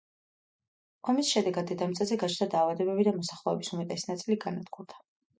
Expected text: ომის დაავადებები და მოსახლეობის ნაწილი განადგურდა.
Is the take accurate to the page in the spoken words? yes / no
no